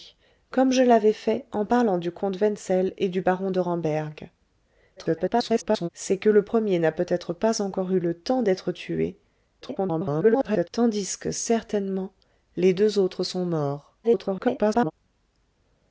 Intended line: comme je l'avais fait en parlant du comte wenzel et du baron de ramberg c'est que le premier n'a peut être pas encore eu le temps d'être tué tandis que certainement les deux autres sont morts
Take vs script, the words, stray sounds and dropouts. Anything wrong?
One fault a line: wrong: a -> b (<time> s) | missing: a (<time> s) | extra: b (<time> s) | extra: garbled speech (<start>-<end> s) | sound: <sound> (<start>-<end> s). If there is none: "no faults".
extra: garbled speech (5.0-5.9 s)
extra: garbled speech (9.6-10.7 s)
extra: garbled speech (14.0-14.9 s)